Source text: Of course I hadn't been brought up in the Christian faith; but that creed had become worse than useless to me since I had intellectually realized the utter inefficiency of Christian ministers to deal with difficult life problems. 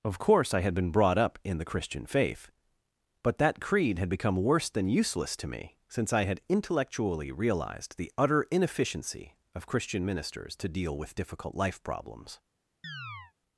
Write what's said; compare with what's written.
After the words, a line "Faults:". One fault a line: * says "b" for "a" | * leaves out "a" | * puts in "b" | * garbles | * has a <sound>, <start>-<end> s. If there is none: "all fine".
Of course I had been brought up in the Christian faith; but that creed had become worse than useless to me since I had intellectually realized the utter inefficiency of Christian ministers to deal with difficult life problems.
Faults:
* says "had" for "hadn't"
* has a chirp, 12.8-13.3 s